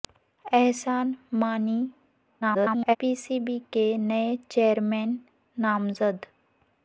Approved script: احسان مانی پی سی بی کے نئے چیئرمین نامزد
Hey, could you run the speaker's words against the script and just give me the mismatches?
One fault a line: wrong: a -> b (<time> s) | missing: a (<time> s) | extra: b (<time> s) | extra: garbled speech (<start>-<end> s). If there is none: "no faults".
extra: garbled speech (2.4-3.0 s)